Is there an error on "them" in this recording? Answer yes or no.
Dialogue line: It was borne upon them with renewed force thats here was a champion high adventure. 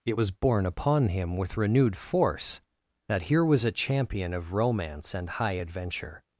yes